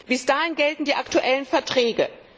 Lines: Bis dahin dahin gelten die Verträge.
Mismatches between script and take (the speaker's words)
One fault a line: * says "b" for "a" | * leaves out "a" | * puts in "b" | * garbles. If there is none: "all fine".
* leaves out "dahin"
* puts in "aktuellen"